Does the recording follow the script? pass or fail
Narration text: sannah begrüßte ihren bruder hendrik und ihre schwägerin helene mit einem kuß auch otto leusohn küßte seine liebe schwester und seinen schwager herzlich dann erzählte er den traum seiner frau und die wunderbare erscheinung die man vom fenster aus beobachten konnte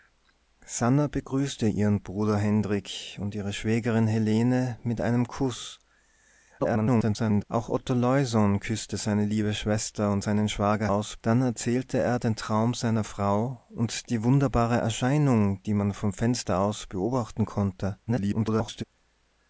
fail